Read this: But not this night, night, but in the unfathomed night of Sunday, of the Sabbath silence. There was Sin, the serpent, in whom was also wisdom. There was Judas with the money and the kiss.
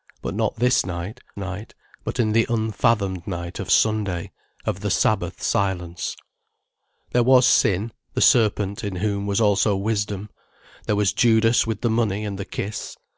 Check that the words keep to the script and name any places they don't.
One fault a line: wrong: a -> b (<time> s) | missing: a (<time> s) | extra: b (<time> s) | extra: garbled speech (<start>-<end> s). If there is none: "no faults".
no faults